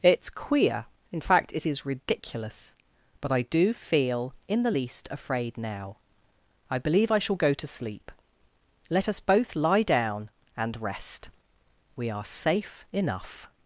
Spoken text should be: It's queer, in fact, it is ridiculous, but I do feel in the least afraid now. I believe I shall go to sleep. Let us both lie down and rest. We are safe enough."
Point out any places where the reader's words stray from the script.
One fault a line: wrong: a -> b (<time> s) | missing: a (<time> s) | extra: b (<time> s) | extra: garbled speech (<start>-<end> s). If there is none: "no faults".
no faults